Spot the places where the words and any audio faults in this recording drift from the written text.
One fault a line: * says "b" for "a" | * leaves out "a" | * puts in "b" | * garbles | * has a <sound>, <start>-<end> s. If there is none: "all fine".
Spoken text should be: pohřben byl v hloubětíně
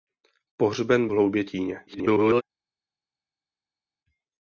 * leaves out "byl"
* garbles